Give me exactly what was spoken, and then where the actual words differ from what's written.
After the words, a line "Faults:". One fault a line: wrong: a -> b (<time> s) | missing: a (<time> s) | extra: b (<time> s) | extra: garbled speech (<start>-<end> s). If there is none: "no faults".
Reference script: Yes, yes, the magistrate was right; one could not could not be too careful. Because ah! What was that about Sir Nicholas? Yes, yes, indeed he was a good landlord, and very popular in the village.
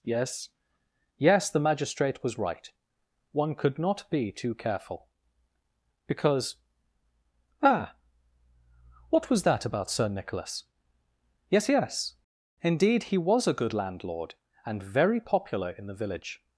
Yes, yes, the magistrate was right; one could not be too careful. Because ah! What was that about Sir Nicholas? Yes, yes, indeed he was a good landlord, and very popular in the village.
Faults:
missing: could not (4.1 s)